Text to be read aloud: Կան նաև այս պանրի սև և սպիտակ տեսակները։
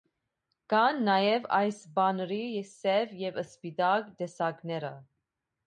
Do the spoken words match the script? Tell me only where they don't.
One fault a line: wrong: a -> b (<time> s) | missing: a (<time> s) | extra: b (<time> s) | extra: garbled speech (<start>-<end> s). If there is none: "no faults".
no faults